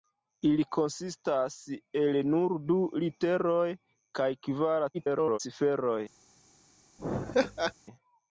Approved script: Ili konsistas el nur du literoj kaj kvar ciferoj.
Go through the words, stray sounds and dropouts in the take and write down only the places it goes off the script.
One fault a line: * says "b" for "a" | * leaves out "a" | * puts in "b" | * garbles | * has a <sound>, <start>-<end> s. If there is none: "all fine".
* garbles
* has a laugh, 7.0-7.7 s